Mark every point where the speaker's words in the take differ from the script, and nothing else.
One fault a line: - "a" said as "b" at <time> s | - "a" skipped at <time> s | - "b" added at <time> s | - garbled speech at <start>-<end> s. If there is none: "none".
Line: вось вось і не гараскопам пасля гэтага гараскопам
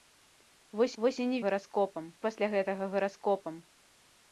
none